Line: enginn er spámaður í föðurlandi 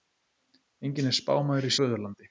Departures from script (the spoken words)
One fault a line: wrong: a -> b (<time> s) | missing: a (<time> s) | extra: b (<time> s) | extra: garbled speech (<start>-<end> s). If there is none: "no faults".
no faults